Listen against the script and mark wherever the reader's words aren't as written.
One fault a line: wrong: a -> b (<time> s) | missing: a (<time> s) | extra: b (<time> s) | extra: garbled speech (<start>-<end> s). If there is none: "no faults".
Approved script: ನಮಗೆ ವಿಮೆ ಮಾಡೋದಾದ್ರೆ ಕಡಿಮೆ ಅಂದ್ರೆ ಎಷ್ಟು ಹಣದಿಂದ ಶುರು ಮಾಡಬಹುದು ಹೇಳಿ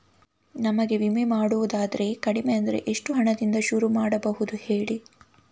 no faults